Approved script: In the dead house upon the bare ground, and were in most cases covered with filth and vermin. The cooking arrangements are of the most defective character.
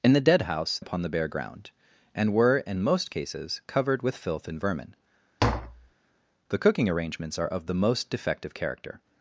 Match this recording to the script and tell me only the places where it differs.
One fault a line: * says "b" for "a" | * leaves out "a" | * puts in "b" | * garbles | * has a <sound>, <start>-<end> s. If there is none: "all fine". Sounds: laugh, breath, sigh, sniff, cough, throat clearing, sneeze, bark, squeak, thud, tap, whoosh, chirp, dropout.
* has a tap, 5.4-5.9 s